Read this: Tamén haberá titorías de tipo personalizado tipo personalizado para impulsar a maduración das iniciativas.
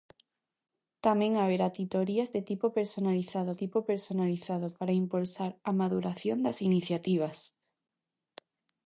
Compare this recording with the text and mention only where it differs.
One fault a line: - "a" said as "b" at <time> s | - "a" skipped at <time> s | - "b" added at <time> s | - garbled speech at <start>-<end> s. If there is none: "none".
none